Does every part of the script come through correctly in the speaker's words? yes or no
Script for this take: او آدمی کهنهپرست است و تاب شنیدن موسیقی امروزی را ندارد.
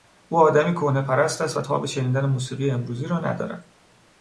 yes